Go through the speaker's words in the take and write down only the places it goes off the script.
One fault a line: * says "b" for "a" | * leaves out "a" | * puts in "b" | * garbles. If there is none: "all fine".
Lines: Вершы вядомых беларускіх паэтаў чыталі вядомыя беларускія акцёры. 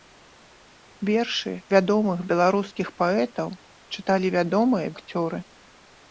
* leaves out "беларускія"